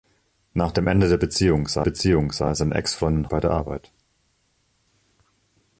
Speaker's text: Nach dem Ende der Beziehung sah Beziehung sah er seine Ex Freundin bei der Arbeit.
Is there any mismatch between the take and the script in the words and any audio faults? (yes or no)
no